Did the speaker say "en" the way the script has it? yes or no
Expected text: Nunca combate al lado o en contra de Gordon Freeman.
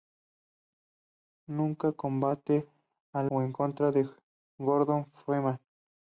yes